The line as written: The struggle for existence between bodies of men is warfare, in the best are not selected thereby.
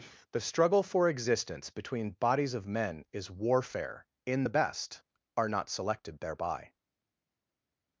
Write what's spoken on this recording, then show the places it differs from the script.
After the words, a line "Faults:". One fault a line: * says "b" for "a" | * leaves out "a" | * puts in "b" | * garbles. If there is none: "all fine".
The struggle for existence between bodies of men is warfare, in the best are not selected thereby.
Faults:
all fine